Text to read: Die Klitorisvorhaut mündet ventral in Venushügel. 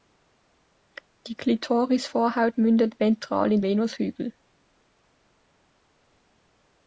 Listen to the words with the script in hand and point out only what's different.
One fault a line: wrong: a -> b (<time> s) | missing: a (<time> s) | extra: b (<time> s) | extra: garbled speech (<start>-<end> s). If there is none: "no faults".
no faults